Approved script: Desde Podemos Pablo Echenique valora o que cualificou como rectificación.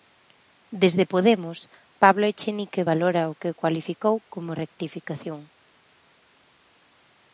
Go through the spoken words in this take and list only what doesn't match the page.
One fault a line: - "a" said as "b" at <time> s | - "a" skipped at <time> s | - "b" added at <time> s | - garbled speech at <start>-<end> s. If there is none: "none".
none